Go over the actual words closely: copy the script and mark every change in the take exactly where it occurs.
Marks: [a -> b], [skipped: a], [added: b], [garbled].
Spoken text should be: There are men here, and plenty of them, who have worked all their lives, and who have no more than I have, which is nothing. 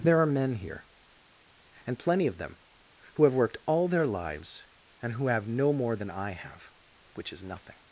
There are men here, and plenty of them, who have worked all their lives, and who have no more than I have, which is nothing.